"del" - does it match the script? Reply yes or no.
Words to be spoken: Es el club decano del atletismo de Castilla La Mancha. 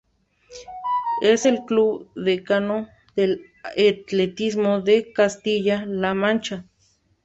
yes